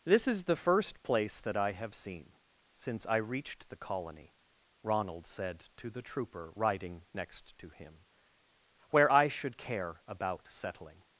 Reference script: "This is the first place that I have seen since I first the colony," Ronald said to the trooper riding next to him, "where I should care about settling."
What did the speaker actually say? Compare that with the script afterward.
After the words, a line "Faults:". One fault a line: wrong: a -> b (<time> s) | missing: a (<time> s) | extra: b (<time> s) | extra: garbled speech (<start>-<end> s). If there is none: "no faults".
"This is the first place that I have seen since I reached the colony," Ronald said to the trooper riding next to him, "where I should care about settling."
Faults:
wrong: first -> reached (3.2 s)